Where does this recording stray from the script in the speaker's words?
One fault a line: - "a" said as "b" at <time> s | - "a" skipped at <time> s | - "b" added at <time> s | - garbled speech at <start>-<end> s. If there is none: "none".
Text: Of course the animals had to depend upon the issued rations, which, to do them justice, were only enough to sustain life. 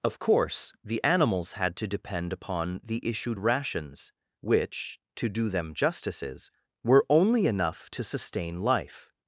- "justice" said as "justices" at 5.7 s